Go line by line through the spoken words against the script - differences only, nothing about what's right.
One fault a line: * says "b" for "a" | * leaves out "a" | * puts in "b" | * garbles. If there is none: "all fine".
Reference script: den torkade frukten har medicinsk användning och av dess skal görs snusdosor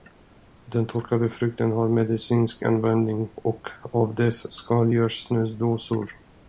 all fine